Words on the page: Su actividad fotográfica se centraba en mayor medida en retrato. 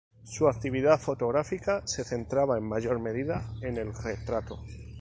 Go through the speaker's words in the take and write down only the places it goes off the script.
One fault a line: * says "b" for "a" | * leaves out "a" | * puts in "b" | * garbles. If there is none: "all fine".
* puts in "el"